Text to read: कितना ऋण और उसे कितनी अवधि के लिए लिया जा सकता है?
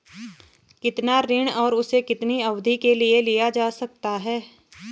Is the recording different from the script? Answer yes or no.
no